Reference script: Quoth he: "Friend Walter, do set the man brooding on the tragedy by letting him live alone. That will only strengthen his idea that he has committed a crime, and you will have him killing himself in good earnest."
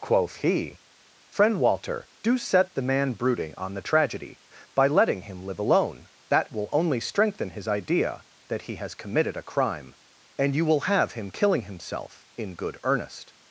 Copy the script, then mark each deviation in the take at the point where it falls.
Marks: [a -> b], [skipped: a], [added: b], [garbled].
Quoth he: "Friend Walter, do set the man brooding on the tragedy by letting him live alone. That will only strengthen his idea that he has committed a crime, and you will have him killing himself in good earnest."